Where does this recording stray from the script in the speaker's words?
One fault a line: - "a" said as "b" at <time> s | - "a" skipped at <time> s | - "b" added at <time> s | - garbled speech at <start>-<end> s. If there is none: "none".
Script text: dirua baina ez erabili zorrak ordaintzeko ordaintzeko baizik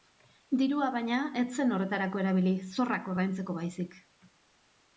- "zen horretarako" added at 1.6 s
- "ordaintzeko" skipped at 3.6 s